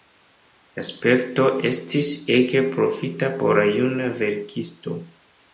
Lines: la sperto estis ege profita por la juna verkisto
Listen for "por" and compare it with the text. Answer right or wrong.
right